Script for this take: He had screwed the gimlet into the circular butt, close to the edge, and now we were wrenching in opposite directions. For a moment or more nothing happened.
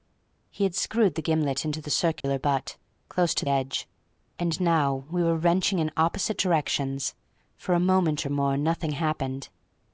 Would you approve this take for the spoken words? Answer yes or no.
no